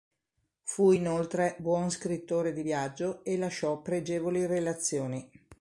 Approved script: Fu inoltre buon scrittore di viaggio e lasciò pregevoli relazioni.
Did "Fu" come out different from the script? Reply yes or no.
no